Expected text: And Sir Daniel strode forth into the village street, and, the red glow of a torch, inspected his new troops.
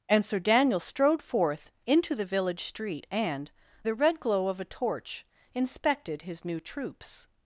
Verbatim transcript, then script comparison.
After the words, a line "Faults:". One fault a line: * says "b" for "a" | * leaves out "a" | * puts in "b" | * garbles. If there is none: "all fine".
And Sir Daniel strode forth into the village street, and, the red glow of a torch, inspected his new troops.
Faults:
all fine